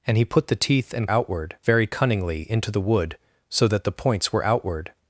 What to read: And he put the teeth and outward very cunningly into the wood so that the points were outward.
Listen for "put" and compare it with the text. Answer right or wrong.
right